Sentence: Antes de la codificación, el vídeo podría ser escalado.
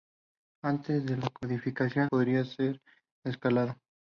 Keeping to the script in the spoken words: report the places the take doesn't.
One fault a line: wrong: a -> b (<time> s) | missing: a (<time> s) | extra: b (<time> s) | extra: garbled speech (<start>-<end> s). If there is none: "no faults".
missing: el vídeo (2.1 s)